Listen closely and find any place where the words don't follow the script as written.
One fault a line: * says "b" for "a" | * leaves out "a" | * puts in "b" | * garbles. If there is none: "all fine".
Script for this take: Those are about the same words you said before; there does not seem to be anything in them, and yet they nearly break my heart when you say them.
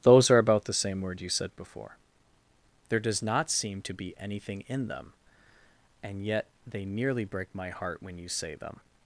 * says "word" for "words"